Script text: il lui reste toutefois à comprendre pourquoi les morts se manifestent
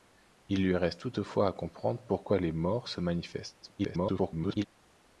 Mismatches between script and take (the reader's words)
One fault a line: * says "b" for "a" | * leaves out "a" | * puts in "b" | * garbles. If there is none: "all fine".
* garbles